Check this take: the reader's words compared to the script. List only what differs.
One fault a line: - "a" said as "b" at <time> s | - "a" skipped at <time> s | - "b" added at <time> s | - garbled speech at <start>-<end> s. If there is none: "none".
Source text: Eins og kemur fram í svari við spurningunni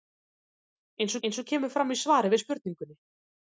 - "eins" added at 1.3 s